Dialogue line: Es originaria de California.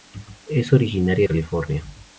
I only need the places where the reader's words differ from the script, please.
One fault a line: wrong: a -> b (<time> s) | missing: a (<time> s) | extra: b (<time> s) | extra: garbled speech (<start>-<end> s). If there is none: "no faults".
missing: de (1.3 s)